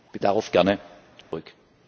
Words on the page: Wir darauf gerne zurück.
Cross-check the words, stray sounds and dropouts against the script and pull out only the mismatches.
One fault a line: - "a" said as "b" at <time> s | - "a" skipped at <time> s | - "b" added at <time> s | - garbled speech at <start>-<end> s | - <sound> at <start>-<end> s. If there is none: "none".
- dropout at 1.2-1.3 s